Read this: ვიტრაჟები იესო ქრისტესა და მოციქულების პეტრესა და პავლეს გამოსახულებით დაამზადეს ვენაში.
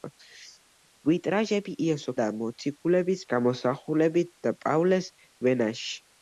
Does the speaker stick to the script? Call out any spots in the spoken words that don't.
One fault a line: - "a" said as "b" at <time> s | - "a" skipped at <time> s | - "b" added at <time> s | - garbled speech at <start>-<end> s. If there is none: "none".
- "ქრისტესა" skipped at 2.1 s
- "პეტრესა" said as "გამოსახულებით" at 3.4 s
- "გამოსახულებით დაამზადეს" skipped at 5.1 s